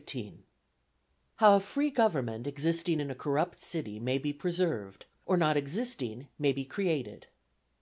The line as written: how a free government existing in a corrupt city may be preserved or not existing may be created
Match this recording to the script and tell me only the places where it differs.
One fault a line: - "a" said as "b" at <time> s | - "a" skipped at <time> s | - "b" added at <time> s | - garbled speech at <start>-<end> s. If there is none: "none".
none